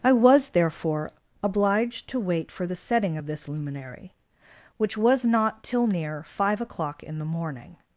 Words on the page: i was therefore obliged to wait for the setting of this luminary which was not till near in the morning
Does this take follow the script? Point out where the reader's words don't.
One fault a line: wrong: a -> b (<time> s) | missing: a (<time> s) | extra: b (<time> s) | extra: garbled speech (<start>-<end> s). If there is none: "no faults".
extra: five o'clock (6.2 s)